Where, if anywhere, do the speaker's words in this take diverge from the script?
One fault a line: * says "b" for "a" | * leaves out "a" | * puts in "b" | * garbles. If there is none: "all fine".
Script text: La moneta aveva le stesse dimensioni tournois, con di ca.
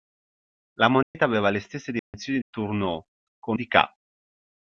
all fine